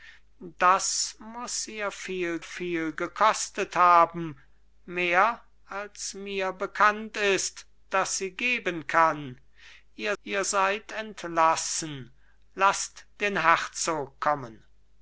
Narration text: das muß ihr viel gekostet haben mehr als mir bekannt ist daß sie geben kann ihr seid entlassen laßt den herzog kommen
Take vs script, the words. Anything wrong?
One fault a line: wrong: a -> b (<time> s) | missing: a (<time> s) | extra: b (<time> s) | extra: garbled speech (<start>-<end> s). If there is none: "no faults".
extra: viel (2.4 s)
extra: ihr (10.2 s)